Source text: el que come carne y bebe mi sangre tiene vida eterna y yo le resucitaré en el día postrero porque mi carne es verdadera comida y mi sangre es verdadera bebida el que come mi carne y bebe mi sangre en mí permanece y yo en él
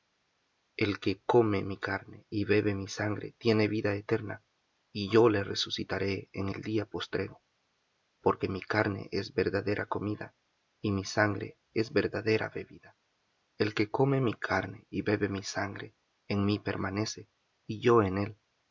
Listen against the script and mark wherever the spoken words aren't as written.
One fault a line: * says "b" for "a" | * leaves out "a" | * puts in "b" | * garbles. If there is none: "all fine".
* puts in "mi"